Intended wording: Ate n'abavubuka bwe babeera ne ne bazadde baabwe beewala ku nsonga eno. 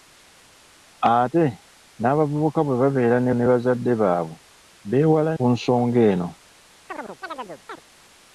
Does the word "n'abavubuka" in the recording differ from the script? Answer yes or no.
no